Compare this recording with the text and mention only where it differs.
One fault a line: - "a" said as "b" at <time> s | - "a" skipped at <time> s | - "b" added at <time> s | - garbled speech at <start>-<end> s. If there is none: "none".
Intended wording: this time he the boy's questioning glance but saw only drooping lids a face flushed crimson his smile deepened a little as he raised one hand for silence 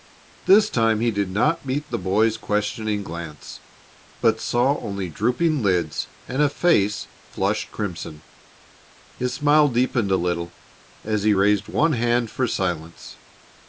- "did not meet" added at 1.1 s
- "and" added at 6.3 s